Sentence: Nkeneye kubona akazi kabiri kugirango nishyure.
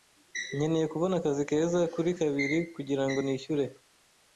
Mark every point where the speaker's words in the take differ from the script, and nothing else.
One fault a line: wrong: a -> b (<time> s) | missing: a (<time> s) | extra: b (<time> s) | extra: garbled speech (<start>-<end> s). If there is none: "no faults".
extra: keza kuri (1.5 s)